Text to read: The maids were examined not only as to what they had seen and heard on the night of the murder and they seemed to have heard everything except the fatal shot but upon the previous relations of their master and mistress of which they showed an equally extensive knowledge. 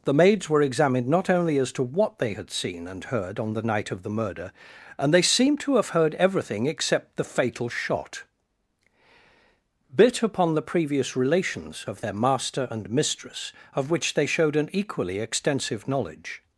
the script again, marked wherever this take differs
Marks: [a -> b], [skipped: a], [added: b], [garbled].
The maids were examined not only as to what they had seen and heard on the night of the murder and they seemed to have heard everything except the fatal shot [but -> bit] upon the previous relations of their master and mistress of which they showed an equally extensive knowledge.